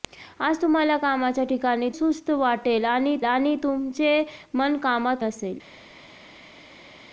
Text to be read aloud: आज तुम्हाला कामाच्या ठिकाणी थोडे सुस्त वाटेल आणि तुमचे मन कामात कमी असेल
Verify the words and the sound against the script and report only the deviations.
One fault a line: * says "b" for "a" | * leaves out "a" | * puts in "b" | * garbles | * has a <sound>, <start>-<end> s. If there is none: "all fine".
* leaves out "थोडे"
* puts in "आणि"
* leaves out "कमी"